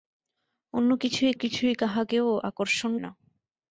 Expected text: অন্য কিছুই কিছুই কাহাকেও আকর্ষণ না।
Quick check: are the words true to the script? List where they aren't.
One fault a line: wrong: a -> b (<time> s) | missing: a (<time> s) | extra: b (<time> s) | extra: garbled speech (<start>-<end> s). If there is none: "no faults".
no faults